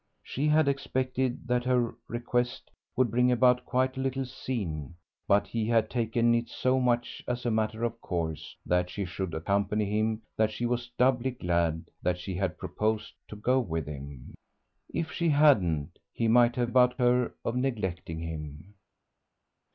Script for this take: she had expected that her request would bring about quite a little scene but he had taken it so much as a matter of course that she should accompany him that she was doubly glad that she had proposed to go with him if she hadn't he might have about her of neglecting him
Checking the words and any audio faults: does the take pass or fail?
pass